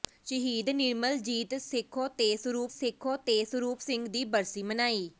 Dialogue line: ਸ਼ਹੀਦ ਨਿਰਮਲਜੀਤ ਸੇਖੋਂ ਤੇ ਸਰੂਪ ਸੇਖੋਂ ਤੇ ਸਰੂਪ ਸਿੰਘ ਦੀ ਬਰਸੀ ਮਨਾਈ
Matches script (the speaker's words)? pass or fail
pass